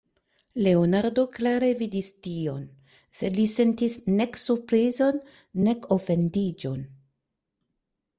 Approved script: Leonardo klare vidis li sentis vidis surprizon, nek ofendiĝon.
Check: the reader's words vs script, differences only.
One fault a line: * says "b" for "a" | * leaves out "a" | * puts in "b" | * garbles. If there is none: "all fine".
* puts in "tion sed"
* says "nek" for "vidis"